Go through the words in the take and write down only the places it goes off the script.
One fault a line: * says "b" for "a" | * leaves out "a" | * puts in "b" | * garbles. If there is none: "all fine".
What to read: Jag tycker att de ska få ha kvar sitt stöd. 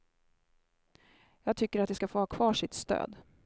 all fine